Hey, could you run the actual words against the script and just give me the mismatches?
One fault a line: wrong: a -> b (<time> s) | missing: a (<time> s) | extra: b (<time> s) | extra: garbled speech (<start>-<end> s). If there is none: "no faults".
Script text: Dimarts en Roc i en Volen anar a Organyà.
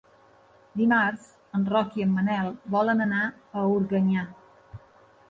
extra: Manel (2.1 s)